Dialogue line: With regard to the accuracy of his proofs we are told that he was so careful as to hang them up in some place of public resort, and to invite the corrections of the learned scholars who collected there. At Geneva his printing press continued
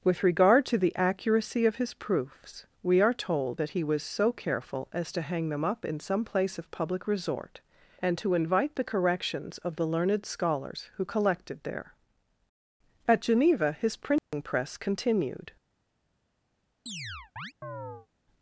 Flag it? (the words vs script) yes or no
no